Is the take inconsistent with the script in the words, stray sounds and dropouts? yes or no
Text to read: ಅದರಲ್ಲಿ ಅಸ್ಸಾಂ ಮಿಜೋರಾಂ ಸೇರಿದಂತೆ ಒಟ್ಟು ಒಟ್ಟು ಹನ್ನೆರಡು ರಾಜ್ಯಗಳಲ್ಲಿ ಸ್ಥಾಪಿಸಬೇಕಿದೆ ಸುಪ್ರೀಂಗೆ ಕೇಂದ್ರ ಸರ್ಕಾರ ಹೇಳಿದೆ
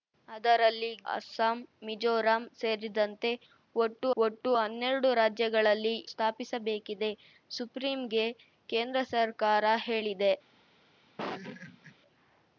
yes